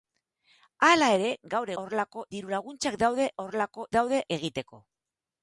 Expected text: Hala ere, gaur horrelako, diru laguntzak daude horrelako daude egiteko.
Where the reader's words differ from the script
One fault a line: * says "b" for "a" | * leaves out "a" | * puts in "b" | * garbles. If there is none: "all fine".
all fine